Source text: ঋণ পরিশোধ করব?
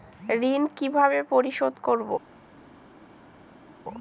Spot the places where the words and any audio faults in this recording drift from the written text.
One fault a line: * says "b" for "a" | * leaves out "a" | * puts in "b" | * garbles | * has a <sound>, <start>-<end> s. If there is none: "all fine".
* puts in "কিভাবে"